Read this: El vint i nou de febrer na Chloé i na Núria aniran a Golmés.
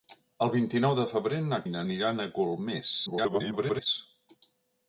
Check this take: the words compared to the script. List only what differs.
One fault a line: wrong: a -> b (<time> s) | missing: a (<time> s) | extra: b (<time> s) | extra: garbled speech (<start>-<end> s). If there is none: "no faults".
missing: Chloé (1.6 s)
missing: Núria (1.8 s)
extra: garbled speech (3.1-3.9 s)